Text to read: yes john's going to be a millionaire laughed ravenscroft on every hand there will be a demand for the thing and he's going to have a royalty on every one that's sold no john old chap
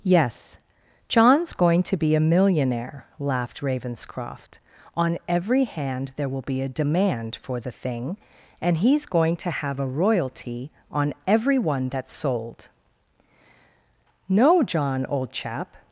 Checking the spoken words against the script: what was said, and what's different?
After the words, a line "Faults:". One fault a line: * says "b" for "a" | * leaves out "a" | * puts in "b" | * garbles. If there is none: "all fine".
yes john's going to be a millionaire laughed ravenscroft on every hand there will be a demand for the thing and he's going to have a royalty on every one that's sold no john old chap
Faults:
all fine